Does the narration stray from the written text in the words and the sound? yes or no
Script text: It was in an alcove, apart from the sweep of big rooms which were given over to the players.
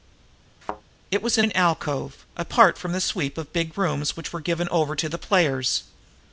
yes